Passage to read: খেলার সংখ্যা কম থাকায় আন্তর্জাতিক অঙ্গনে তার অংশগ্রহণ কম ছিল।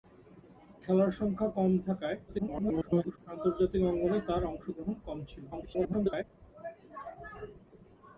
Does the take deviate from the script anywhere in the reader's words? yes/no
yes